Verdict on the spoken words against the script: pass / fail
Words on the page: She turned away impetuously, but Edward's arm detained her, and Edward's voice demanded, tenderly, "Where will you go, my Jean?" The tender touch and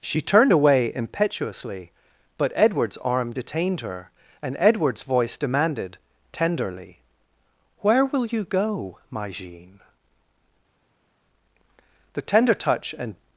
pass